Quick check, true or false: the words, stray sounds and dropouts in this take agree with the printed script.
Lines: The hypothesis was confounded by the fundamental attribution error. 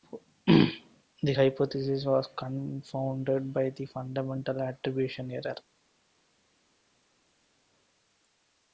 true